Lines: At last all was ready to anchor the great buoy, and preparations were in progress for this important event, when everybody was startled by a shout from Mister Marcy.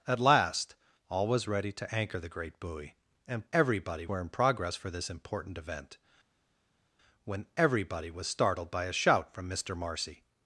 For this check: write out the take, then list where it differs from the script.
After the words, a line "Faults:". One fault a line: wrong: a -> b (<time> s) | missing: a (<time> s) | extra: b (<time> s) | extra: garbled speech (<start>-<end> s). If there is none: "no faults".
At last all was ready to anchor the great buoy, and everybody were in progress for this important event, when everybody was startled by a shout from Mister Marcy.
Faults:
wrong: preparations -> everybody (3.5 s)